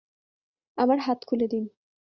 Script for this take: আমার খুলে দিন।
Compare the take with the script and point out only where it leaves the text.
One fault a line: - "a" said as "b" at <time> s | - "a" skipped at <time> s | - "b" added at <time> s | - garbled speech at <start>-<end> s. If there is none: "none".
- "হাত" added at 1.0 s